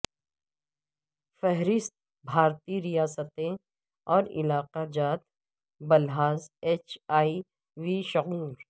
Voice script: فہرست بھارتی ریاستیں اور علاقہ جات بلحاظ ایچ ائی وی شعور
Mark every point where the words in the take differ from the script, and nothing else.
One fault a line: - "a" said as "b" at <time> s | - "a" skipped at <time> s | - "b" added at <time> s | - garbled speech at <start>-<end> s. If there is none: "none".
none